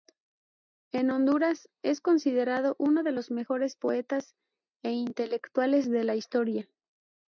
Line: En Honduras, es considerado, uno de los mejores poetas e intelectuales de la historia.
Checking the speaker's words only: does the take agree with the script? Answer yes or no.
yes